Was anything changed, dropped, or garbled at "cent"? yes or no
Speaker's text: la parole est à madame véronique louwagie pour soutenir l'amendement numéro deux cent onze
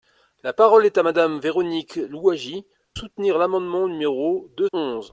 yes